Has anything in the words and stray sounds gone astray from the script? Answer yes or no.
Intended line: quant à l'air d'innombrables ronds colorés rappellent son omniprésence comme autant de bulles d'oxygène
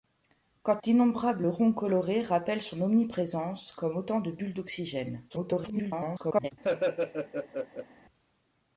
yes